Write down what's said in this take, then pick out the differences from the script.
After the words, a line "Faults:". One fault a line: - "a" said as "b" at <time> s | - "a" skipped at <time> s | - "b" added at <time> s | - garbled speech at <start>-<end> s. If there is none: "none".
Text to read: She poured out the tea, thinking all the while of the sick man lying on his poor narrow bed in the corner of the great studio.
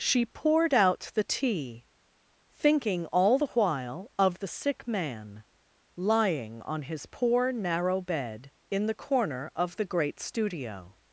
She poured out the tea, thinking all the while of the sick man lying on his poor narrow bed in the corner of the great studio.
Faults:
none